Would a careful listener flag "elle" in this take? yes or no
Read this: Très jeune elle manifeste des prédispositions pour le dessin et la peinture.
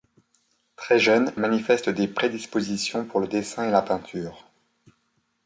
yes